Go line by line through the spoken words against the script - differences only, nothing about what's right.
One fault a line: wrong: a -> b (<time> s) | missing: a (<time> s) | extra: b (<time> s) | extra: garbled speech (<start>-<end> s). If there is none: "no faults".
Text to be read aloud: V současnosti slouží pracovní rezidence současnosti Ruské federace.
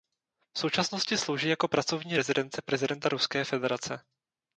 extra: jako (1.5 s)
wrong: současnosti -> prezidenta (2.6 s)